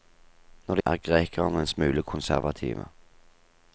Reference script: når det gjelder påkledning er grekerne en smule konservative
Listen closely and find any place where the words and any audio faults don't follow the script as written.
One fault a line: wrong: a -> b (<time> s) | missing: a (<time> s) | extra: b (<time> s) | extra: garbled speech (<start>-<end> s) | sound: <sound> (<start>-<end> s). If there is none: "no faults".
missing: gjelder påkledning (0.8 s)